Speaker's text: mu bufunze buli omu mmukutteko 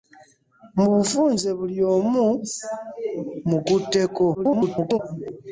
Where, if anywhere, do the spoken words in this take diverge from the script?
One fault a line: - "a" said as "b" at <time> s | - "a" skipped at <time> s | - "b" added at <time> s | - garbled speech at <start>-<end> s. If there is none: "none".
- garbled speech at 4.3-5.0 s